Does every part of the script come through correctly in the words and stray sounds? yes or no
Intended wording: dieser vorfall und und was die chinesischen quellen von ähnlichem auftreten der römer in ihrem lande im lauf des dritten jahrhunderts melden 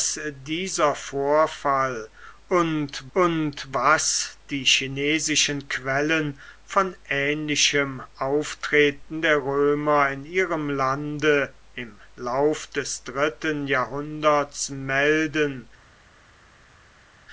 yes